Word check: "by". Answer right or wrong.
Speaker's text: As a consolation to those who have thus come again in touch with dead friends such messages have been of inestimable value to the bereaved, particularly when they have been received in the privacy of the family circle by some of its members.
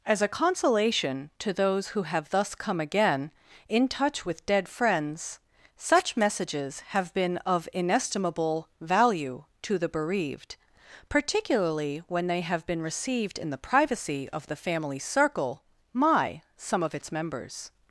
wrong